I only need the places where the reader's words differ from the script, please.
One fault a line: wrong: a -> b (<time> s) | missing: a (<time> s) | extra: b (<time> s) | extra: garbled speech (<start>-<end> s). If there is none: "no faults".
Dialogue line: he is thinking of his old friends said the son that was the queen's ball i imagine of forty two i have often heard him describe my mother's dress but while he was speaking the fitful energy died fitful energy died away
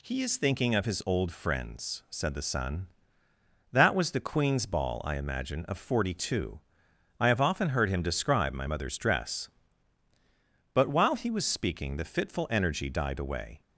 missing: fitful energy died (13.2 s)